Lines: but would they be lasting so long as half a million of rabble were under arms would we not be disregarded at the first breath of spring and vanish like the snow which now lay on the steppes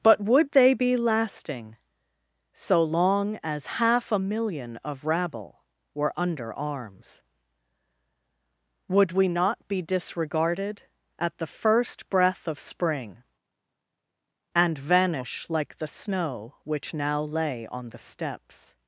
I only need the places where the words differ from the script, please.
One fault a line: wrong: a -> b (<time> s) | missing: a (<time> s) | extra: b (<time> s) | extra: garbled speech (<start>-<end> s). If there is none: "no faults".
no faults